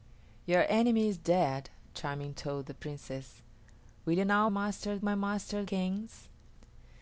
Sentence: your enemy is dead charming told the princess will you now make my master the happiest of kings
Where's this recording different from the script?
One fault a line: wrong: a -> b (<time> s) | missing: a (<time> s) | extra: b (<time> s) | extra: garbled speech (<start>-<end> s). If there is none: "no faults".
wrong: make -> master (4.5 s)
missing: the happiest of (5.6 s)